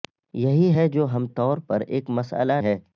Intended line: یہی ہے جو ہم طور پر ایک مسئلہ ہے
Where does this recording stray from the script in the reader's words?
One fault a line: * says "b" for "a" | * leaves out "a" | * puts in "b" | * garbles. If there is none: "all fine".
all fine